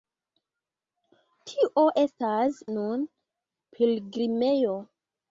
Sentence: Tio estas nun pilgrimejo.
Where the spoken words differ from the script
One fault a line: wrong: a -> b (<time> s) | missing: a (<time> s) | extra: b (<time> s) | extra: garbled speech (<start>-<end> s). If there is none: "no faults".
no faults